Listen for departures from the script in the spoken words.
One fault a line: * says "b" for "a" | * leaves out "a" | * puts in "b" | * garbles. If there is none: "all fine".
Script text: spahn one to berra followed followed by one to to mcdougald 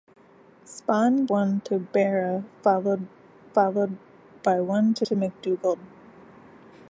all fine